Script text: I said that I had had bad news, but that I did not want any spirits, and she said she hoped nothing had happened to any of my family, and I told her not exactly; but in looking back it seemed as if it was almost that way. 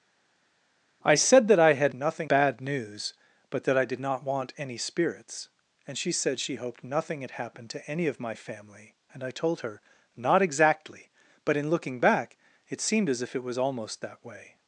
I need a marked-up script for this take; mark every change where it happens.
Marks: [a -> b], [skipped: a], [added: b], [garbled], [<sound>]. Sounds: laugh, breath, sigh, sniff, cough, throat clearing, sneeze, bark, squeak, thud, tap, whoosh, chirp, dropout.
I said that I had [had -> nothing] bad news, but that I did not want any spirits, and she said she hoped nothing had happened to any of my family, and I told her not exactly; but in looking back it seemed as if it was almost that way.